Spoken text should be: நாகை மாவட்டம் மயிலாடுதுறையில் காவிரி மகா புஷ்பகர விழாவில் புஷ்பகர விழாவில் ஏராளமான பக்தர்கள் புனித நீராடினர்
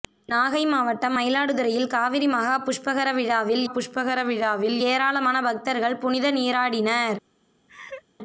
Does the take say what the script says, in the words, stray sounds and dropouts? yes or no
no